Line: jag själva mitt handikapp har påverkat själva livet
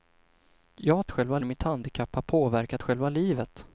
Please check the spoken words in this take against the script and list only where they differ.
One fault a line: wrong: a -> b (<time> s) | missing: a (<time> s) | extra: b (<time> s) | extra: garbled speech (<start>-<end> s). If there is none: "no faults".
no faults